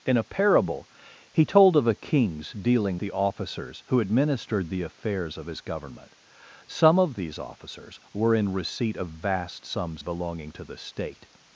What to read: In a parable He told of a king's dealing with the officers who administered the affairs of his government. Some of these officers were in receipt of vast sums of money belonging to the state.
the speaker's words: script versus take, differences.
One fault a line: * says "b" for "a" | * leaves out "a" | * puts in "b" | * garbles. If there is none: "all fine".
* leaves out "with"
* leaves out "of money"